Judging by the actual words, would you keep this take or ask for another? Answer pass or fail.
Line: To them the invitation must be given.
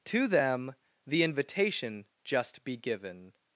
fail